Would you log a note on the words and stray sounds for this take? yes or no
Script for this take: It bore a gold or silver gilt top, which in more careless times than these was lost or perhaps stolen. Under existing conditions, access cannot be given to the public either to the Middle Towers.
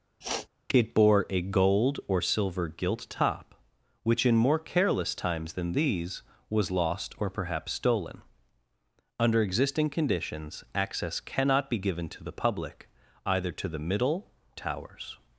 yes